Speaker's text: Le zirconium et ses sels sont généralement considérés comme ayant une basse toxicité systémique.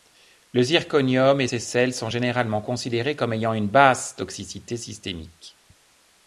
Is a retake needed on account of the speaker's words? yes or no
no